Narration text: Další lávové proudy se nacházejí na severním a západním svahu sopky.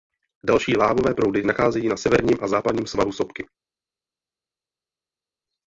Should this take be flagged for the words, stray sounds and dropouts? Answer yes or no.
yes